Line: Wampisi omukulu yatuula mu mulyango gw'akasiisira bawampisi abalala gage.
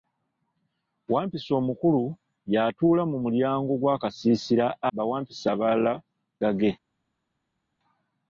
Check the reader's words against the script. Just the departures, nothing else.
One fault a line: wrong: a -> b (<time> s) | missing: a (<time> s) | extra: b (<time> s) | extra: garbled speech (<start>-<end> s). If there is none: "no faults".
no faults